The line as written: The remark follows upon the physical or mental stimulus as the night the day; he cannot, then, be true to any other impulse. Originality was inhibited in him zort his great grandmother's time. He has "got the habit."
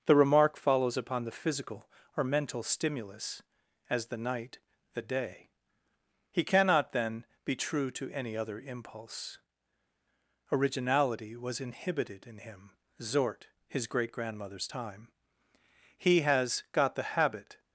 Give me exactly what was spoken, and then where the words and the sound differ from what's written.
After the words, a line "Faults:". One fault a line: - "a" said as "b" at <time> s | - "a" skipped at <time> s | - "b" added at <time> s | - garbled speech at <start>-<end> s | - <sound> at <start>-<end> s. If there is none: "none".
The remark follows upon the physical or mental stimulus as the night the day; he cannot, then, be true to any other impulse. Originality was inhibited in him zort his great grandmother's time. He has "got the habit."
Faults:
none